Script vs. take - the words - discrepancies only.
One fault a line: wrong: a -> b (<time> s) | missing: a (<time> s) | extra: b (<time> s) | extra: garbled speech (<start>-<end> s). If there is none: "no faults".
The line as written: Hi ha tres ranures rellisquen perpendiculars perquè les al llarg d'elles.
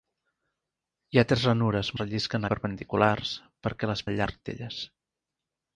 no faults